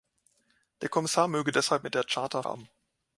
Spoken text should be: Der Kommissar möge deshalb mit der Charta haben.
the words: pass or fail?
pass